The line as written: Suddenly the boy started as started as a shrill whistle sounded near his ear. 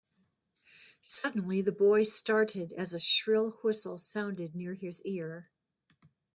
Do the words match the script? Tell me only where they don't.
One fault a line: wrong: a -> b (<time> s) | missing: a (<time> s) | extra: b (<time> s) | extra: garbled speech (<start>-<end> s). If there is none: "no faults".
missing: started as (2.9 s)